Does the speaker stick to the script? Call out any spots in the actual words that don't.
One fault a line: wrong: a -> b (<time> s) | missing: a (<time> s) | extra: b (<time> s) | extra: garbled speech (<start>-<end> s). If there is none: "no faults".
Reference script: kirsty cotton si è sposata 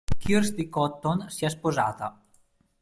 no faults